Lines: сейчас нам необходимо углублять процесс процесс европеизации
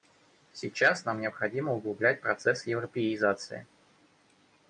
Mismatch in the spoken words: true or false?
true